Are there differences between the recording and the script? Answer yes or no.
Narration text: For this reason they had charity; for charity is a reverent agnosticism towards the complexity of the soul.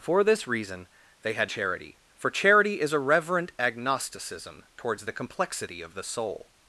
no